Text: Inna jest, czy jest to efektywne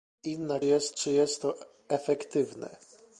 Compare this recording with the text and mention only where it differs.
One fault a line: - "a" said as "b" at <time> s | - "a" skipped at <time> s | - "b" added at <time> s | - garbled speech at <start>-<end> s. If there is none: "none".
none